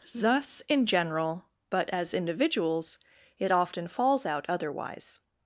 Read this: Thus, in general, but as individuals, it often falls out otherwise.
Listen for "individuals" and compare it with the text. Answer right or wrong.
right